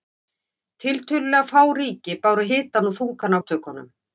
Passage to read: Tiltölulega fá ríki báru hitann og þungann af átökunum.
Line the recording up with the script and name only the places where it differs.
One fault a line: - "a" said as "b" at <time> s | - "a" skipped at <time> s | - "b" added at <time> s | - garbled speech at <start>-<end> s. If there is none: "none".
- "af" skipped at 3.4 s